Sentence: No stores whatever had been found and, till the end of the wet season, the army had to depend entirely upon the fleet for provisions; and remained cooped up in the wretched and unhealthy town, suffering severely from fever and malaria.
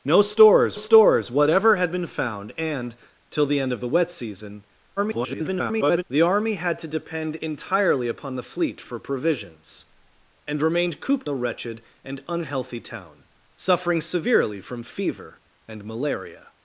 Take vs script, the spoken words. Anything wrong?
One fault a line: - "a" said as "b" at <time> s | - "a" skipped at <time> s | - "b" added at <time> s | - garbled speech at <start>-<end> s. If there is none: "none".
- "stores" added at 0.8 s
- garbled speech at 5.0-6.0 s
- "up in" skipped at 11.3 s